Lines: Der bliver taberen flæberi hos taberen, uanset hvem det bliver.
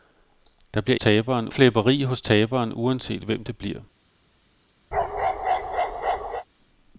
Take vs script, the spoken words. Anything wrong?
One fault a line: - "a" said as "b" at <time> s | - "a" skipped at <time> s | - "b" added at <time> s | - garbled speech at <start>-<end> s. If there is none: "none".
none